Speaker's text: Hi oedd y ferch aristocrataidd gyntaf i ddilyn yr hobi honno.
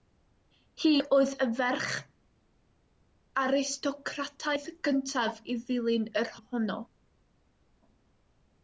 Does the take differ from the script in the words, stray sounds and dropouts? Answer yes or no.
yes